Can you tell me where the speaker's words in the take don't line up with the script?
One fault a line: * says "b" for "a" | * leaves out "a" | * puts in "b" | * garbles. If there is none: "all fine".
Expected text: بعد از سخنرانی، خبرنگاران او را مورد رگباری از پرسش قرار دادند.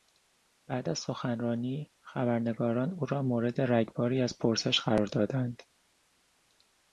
all fine